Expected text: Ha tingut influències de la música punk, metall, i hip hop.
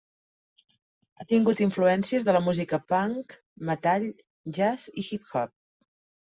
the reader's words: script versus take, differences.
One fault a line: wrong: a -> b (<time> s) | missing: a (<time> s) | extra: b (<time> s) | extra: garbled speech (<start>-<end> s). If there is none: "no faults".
extra: jazz (4.6 s)